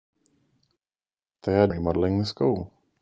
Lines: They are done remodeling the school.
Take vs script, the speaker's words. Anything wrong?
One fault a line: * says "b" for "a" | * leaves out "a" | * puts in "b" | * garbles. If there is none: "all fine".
* leaves out "done"